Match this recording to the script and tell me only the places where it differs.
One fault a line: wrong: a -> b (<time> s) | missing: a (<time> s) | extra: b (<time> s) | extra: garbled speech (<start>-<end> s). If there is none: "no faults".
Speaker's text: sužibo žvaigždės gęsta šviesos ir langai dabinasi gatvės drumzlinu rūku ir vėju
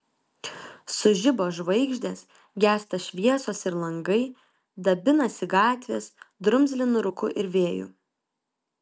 no faults